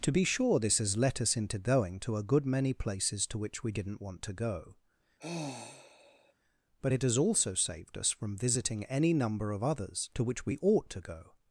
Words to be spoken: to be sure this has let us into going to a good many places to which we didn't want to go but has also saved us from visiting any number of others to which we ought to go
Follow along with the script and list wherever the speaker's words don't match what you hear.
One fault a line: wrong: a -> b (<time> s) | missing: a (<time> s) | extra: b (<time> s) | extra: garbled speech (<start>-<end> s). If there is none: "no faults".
extra: it (6.9 s)